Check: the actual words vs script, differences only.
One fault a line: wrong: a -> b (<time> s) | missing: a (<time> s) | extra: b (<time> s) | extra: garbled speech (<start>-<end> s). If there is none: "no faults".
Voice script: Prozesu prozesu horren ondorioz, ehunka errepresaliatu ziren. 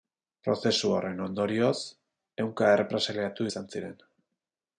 missing: prozesu (0.9 s)
extra: izan (3.5 s)